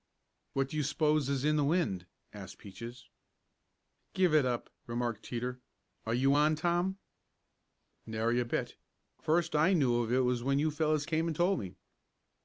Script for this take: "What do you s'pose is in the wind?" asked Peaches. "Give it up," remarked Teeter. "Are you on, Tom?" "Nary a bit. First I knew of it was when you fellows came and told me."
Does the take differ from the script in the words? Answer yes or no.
no